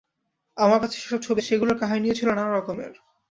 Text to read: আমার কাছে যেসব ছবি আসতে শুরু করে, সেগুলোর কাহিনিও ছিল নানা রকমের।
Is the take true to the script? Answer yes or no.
no